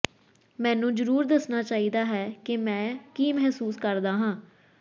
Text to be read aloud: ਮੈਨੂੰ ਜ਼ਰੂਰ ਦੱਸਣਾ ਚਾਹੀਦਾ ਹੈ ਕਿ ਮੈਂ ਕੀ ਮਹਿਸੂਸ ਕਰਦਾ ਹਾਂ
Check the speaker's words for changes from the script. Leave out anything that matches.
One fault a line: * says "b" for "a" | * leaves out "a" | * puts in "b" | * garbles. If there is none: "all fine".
all fine